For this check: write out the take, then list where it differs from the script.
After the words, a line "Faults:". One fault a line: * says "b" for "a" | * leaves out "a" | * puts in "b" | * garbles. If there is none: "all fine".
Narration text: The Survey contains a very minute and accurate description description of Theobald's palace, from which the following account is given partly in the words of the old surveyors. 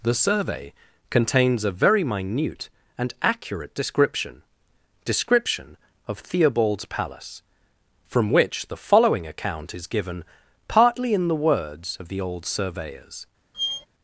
The Survey contains a very minute and accurate description description of Theobald's palace, from which the following account is given partly in the words of the old surveyors.
Faults:
all fine